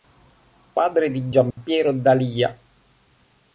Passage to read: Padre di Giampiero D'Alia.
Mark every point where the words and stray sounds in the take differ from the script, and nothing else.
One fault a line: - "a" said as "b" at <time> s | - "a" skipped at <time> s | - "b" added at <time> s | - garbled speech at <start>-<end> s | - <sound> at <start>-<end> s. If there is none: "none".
- dropout at 1.5-1.6 s